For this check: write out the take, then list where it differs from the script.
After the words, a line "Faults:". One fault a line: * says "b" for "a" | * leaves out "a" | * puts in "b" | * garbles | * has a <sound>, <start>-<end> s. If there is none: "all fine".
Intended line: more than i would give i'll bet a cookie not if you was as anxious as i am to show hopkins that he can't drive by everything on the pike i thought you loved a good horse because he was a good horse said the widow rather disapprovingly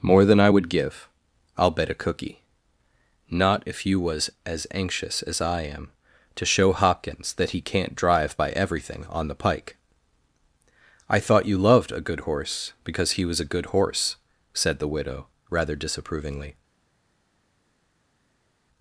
more than i would give i'll bet a cookie not if you was as anxious as i am to show hopkins that he can't drive by everything on the pike i thought you loved a good horse because he was a good horse said the widow rather disapprovingly
Faults:
all fine